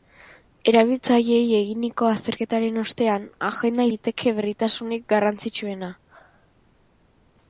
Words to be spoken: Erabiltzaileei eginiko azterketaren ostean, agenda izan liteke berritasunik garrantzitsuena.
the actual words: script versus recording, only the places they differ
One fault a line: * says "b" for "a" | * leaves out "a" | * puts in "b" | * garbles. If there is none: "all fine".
* leaves out "izan"